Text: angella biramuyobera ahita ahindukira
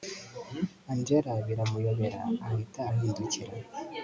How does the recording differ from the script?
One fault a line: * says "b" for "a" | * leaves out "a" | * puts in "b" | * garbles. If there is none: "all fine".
all fine